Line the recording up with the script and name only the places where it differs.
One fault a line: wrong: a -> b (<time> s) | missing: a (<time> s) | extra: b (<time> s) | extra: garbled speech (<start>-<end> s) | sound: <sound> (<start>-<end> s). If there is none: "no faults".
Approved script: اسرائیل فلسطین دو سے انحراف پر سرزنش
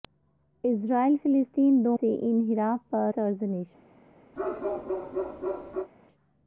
sound: bark (4.4-5.9 s)